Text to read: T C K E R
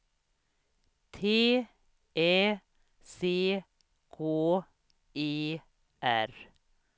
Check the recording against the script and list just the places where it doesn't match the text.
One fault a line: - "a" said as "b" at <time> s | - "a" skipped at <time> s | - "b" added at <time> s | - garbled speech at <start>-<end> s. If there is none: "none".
- "Ä" added at 2.2 s